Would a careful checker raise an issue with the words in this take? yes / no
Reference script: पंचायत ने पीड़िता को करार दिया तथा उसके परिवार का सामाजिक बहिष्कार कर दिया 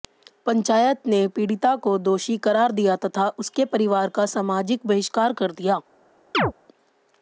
yes